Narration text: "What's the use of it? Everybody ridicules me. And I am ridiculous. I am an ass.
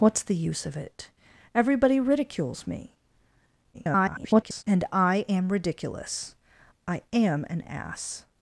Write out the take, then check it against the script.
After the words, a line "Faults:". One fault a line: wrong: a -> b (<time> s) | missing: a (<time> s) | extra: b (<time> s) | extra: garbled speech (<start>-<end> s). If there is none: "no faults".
"What's the use of it? Everybody ridicules me. [garbled] And I am ridiculous. I am an ass.
Faults:
extra: garbled speech (3.7-4.6 s)